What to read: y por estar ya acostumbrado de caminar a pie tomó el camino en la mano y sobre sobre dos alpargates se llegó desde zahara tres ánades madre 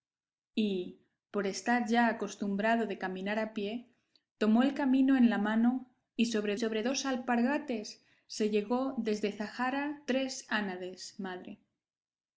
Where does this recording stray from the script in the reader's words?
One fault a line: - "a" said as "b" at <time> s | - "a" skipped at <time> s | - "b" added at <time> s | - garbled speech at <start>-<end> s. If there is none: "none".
none